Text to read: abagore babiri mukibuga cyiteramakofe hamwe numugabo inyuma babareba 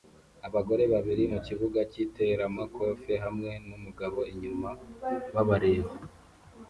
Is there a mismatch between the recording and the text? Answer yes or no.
no